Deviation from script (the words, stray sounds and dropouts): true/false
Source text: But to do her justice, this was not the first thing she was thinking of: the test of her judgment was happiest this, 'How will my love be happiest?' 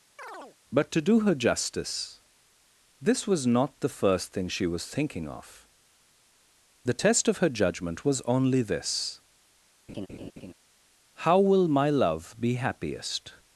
true